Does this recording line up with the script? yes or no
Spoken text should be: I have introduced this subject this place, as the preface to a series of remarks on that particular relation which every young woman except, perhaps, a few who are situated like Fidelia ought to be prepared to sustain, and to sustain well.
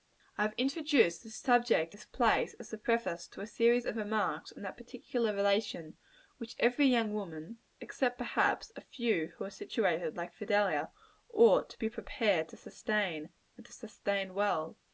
yes